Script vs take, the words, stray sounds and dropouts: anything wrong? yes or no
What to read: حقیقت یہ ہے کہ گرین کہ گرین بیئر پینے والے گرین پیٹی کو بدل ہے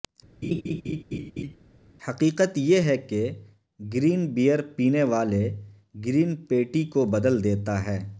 yes